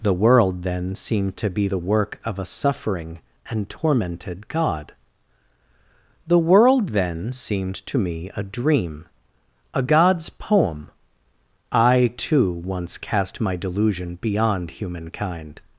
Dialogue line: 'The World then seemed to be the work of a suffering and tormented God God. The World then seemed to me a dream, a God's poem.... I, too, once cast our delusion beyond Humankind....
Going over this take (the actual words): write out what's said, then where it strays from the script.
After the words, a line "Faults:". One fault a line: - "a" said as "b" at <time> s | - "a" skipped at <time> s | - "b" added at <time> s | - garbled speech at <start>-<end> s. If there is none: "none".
'The World then seemed to be the work of a suffering and tormented God. The World then seemed to me a dream, a God's poem.... I, too, once cast my delusion beyond Humankind....
Faults:
- "God" skipped at 4.9 s
- "our" said as "my" at 13.4 s